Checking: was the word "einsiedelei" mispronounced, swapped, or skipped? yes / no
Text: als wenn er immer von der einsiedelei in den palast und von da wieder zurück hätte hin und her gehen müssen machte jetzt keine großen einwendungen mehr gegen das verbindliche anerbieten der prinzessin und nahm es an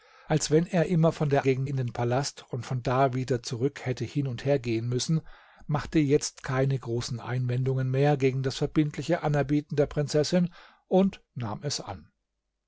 yes